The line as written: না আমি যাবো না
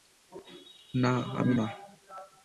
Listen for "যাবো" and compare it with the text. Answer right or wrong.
wrong